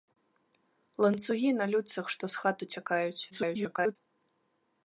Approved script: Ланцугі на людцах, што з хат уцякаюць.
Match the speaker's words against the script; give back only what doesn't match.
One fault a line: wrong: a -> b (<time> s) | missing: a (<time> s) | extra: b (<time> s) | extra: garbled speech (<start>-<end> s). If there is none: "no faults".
extra: garbled speech (3.3-4.0 s)